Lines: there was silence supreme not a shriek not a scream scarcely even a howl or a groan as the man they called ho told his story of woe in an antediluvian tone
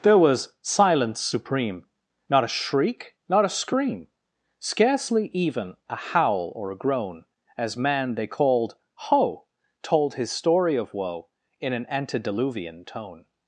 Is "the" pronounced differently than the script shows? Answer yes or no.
yes